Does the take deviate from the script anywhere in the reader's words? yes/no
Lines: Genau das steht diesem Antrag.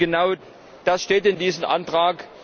yes